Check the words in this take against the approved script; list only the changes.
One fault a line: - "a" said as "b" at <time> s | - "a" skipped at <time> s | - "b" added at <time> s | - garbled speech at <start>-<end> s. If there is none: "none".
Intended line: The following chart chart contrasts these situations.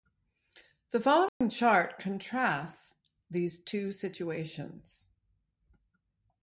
- "chart" skipped at 2.0 s
- "two" added at 3.6 s